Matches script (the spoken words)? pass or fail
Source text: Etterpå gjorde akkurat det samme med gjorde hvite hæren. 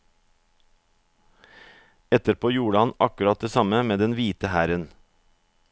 fail